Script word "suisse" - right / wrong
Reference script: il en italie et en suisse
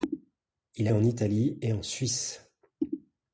right